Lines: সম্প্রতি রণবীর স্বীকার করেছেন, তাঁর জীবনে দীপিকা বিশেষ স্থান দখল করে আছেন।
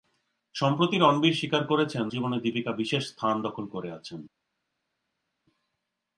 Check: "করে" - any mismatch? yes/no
no